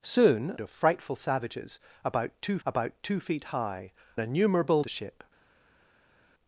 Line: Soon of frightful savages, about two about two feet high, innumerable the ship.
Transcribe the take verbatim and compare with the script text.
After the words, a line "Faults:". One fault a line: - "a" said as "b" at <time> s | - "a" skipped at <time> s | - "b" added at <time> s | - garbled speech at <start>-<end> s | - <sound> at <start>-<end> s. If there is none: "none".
Soon of frightful savages, about two about two feet high, innumerable the ship.
Faults:
none